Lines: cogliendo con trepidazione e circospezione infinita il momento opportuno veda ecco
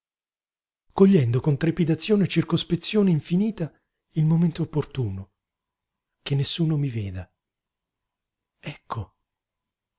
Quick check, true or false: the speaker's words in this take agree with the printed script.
false